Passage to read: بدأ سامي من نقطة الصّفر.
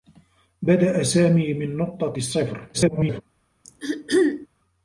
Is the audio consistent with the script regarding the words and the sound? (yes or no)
no